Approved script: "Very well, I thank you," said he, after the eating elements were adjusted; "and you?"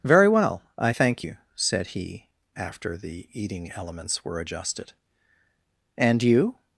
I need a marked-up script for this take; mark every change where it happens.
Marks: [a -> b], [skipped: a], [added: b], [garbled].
"Very well, I thank you," said he, after the eating elements were adjusted; "and you?"